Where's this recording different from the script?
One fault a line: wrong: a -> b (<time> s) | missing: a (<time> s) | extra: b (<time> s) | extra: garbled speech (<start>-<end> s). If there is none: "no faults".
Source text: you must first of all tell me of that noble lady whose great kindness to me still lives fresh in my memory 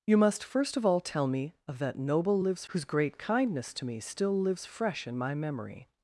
wrong: lady -> lives (2.4 s)